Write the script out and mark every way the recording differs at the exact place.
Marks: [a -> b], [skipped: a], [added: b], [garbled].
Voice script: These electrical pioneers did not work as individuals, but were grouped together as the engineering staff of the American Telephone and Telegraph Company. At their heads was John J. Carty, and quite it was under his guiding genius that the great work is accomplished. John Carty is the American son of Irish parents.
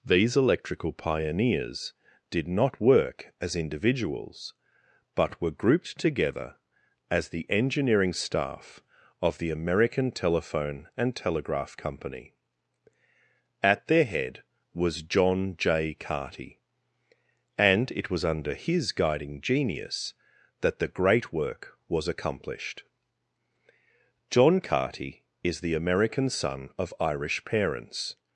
These electrical pioneers did not work as individuals, but were grouped together as the engineering staff of the American Telephone and Telegraph Company. At their [heads -> head] was John J. Carty, and [skipped: quite] it was under his guiding genius that the great work [is -> was] accomplished. John Carty is the American son of Irish parents.